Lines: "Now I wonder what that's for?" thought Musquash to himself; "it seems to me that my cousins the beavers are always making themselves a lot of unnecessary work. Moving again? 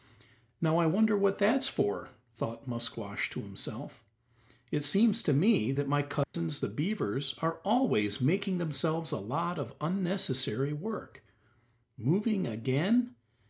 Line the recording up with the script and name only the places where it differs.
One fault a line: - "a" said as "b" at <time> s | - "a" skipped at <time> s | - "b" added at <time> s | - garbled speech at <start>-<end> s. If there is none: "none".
none